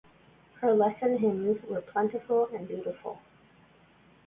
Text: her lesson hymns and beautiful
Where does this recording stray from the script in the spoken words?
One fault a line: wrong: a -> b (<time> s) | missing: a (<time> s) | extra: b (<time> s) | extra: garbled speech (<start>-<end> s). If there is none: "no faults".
extra: were plentiful (1.7 s)